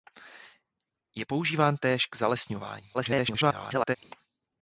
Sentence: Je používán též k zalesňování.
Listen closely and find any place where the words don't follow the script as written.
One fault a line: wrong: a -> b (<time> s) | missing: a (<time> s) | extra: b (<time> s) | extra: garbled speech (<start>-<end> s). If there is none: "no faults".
extra: garbled speech (2.9-4.0 s)